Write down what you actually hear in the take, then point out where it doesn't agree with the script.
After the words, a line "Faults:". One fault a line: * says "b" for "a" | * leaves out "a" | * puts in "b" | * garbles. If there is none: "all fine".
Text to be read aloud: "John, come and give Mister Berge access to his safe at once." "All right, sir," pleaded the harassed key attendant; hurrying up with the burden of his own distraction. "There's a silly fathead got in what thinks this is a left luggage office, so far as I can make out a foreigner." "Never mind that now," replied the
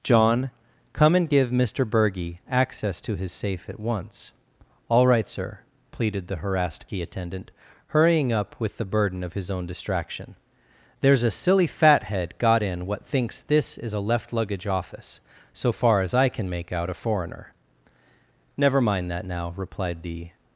"John, come and give Mister Berge access to his safe at once." "All right, sir," pleaded the harassed key attendant; hurrying up with the burden of his own distraction. "There's a silly fathead got in what thinks this is a left luggage office, so far as I can make out a foreigner." "Never mind that now," replied the
Faults:
all fine